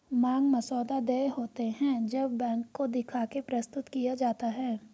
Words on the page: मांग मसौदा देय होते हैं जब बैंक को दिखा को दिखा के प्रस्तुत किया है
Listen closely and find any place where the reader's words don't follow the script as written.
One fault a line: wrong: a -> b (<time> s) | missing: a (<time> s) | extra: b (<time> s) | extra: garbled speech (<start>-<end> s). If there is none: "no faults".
missing: को दिखा (3.2 s)
extra: जाता (4.2 s)